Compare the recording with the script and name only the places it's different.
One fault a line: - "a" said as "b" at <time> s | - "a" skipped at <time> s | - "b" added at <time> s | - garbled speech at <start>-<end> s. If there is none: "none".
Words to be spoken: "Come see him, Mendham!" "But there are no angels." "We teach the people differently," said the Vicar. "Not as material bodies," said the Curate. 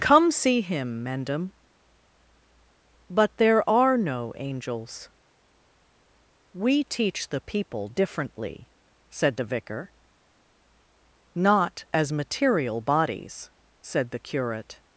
none